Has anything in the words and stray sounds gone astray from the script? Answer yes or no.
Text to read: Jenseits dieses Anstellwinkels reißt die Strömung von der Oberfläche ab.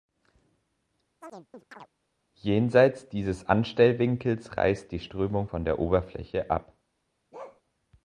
yes